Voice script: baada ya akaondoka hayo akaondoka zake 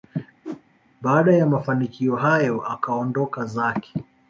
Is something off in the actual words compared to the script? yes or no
yes